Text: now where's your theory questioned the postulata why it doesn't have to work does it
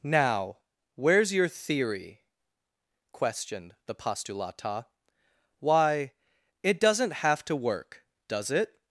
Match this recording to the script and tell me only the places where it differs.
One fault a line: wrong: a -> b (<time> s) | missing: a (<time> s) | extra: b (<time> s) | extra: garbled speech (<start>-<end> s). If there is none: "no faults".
no faults